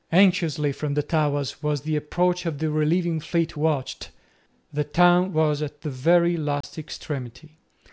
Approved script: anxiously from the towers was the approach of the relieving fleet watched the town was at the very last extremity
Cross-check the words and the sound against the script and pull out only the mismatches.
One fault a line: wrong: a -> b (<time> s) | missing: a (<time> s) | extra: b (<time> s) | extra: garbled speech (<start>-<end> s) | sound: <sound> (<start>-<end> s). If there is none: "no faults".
sound: dropout (6.6-6.6 s)